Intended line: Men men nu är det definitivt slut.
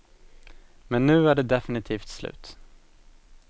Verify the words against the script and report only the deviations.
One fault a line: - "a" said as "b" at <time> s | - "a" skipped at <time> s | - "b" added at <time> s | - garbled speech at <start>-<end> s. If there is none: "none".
- "men" skipped at 1.1 s